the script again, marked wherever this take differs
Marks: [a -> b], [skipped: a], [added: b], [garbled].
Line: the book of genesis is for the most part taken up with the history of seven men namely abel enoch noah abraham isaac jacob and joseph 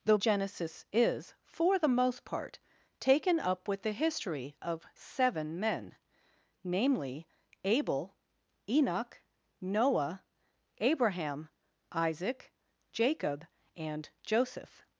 the [skipped: book of] genesis is for the most part taken up with the history of seven men namely abel enoch noah abraham isaac jacob and joseph